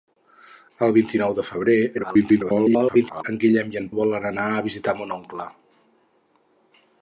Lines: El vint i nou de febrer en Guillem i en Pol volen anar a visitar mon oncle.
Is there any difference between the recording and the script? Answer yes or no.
yes